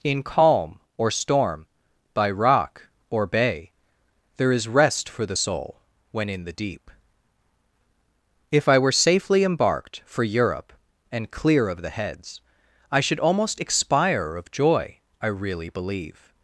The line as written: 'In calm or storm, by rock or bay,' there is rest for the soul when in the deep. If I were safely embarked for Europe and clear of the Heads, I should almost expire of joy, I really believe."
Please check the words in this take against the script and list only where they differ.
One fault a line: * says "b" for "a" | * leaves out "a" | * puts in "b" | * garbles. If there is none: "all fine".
all fine